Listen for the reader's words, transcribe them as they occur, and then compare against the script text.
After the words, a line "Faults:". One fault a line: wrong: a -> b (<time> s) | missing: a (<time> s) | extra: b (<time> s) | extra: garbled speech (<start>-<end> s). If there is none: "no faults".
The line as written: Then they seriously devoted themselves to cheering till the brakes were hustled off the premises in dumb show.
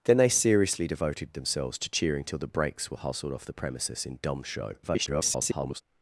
Then they seriously devoted themselves to cheering till the brakes were hustled off the premises in dumb show. [garbled]
Faults:
extra: garbled speech (4.8-5.8 s)